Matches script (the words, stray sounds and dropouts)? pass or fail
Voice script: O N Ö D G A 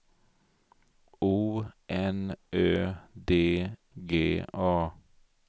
pass